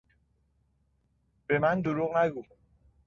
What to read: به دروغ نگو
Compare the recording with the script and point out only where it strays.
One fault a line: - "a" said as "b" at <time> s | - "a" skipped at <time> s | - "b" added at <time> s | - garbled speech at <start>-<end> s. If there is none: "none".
- "من" added at 1.6 s